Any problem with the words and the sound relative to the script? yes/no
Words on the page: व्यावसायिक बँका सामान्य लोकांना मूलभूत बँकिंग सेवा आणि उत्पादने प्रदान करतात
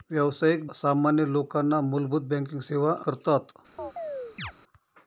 yes